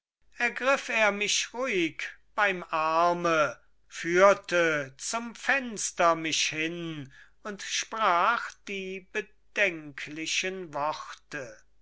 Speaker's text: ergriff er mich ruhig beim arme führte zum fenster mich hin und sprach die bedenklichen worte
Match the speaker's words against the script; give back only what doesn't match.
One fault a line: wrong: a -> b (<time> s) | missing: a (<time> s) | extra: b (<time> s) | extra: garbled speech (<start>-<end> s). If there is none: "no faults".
no faults